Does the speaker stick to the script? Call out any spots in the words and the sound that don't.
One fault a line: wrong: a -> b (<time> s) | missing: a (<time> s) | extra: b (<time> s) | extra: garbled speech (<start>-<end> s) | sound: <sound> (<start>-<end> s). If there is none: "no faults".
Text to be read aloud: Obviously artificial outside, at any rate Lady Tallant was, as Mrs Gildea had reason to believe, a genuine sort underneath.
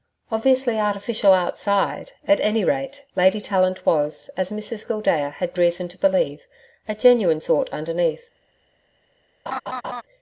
sound: laugh (9.5-10.0 s)